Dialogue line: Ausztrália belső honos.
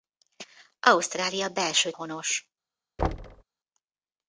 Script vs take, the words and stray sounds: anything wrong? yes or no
yes